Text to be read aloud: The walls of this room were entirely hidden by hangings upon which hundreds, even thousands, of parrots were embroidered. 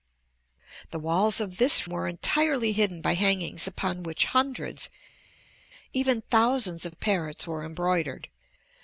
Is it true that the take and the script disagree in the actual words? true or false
true